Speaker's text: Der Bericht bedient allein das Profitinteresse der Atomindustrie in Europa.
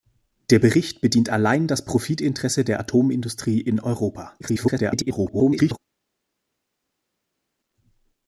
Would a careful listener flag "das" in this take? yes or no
no